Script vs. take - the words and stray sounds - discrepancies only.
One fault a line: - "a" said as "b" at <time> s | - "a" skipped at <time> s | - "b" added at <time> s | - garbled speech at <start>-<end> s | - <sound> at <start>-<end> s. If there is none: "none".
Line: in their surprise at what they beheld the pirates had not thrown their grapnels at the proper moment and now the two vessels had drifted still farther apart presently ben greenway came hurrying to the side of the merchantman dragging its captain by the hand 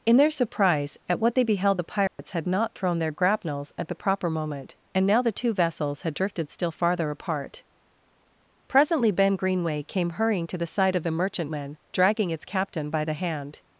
- dropout at 2.1-2.2 s